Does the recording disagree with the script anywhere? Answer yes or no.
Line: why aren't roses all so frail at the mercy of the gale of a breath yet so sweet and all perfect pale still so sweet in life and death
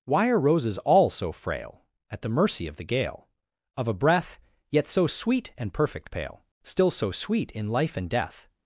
yes